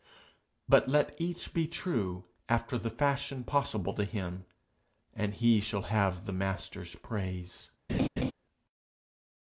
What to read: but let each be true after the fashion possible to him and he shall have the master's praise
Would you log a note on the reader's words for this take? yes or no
no